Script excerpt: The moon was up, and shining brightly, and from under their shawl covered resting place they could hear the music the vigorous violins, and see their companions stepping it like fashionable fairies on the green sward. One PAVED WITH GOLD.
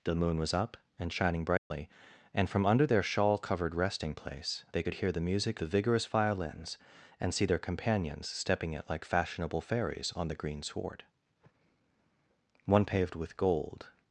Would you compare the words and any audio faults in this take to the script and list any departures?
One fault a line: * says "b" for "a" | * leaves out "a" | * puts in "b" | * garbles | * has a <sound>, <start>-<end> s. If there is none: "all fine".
* has a dropout, 1.6-1.7 s